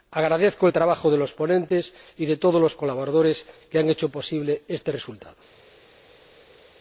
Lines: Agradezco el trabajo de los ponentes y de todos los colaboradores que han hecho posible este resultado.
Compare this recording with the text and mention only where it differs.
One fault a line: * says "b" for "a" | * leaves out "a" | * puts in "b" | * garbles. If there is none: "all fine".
all fine